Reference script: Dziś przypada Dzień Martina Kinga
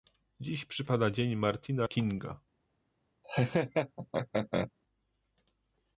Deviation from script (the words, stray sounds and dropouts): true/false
true